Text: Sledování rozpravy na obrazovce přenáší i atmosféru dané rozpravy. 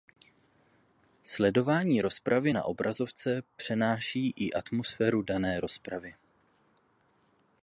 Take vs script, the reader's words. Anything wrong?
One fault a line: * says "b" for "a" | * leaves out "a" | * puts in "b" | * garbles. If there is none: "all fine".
all fine